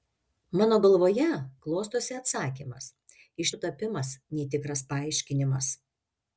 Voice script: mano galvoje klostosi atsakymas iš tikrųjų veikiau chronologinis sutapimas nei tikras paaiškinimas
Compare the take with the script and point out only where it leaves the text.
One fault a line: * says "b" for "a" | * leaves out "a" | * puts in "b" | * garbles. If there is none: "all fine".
* leaves out "tikrųjų veikiau chronologinis"